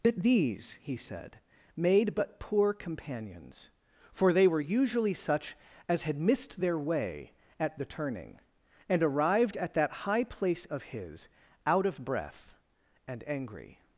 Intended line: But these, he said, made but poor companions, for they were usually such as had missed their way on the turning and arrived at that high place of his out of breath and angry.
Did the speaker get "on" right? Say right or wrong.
wrong